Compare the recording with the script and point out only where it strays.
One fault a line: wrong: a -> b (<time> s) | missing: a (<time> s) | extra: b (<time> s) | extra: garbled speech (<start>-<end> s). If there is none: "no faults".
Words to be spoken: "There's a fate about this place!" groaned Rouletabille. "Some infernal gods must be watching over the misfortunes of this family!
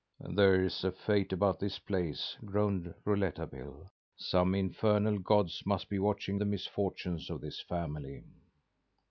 missing: over (6.4 s)